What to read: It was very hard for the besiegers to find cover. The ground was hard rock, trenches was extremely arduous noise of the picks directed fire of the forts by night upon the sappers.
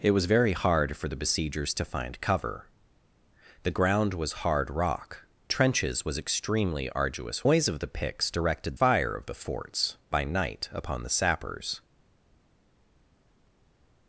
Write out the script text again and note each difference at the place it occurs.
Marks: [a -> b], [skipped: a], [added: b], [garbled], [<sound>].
It was very hard for the besiegers to find cover. The ground was hard rock, trenches was extremely arduous noise of the picks directed fire of the forts by night upon the sappers.